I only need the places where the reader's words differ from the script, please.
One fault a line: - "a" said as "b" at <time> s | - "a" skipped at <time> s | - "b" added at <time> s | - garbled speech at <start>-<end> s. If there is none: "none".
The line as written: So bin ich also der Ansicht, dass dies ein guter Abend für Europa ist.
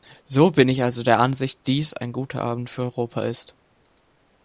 - "dass" skipped at 1.6 s